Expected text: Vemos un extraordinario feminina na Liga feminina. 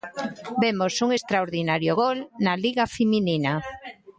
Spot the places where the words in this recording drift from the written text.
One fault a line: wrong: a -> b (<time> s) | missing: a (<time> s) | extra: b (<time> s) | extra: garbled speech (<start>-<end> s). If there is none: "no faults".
wrong: feminina -> gol (2.0 s)